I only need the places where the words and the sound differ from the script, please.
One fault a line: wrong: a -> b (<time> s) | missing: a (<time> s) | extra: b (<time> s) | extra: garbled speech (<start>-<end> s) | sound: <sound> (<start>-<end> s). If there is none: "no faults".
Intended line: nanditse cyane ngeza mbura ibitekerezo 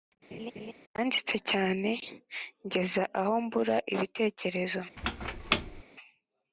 sound: laugh (0.3-0.7 s)
extra: aho (3.2 s)
sound: squeak (5.0-5.8 s)